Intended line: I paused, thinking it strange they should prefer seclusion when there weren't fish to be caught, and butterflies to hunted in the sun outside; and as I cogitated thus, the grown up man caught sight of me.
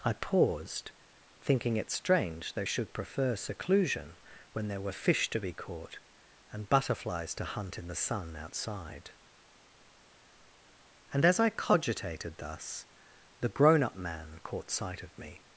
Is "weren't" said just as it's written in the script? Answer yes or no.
no